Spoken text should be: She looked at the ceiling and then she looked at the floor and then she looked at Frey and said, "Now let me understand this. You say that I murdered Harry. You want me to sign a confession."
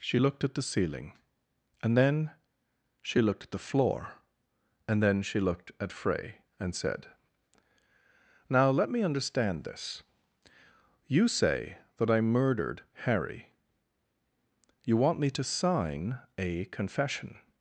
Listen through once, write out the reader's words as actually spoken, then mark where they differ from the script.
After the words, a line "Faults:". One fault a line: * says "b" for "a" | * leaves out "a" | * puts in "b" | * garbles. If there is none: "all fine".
She looked at the ceiling and then she looked at the floor and then she looked at Frey and said, "Now let me understand this. You say that I murdered Harry. You want me to sign a confession."
Faults:
all fine